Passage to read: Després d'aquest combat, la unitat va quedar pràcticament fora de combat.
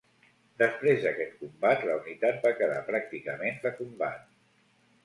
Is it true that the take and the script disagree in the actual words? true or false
true